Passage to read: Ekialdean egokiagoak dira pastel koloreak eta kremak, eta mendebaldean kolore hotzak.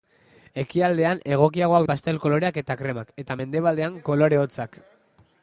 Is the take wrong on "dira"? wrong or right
wrong